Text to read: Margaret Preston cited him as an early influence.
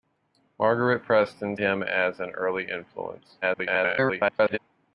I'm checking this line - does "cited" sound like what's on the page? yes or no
no